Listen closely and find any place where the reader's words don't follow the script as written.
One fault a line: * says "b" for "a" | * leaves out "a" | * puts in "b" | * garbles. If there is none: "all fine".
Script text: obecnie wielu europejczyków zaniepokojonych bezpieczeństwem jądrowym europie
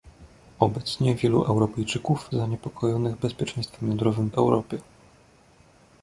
all fine